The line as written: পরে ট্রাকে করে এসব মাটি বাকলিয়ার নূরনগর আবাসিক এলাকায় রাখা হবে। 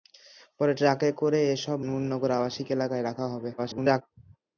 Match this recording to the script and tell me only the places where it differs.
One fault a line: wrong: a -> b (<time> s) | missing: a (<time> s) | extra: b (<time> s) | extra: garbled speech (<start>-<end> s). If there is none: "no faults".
missing: মাটি বাকলিয়ার (1.8 s)
extra: garbled speech (3.6-4.0 s)